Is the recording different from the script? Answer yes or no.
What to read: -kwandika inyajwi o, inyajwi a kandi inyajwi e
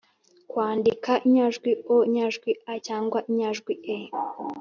yes